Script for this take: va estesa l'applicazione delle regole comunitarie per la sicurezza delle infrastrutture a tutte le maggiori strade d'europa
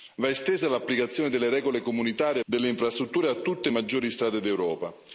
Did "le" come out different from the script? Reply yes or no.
yes